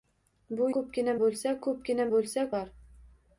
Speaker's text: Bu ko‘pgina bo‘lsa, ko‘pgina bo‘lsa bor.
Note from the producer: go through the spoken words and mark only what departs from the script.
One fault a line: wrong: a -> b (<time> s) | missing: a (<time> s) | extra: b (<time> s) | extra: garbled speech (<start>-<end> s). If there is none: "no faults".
no faults